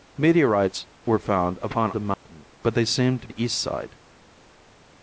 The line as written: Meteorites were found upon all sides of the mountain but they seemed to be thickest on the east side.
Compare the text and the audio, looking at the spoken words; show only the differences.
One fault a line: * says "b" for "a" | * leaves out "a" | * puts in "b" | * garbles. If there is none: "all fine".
* leaves out "all sides of"
* leaves out "be thickest on"